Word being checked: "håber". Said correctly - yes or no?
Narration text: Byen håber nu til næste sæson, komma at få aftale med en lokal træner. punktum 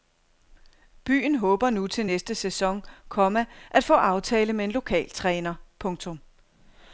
yes